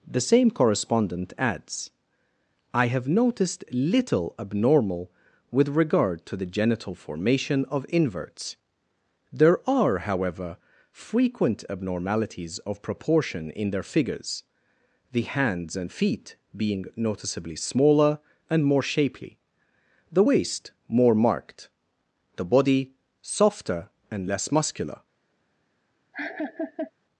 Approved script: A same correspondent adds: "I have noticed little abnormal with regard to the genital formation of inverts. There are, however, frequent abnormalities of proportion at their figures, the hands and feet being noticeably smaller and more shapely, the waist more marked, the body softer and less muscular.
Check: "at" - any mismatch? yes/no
yes